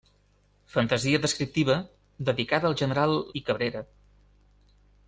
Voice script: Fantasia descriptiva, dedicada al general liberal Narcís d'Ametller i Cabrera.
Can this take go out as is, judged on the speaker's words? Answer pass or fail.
fail